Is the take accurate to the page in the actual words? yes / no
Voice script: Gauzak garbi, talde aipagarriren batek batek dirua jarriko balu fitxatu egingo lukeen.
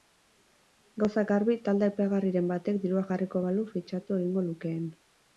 no